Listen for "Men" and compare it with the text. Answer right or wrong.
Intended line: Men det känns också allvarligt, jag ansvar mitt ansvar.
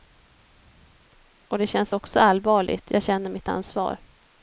wrong